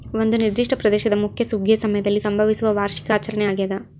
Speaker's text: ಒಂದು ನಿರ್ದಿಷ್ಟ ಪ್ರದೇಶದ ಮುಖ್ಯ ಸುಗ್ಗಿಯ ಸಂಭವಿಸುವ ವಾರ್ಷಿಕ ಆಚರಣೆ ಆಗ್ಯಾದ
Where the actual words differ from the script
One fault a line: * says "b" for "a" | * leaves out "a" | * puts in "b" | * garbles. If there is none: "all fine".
* puts in "ಸಮಯದಲ್ಲಿ"